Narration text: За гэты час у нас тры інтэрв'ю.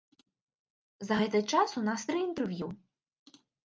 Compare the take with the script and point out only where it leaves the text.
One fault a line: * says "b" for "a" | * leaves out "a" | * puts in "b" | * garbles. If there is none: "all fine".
all fine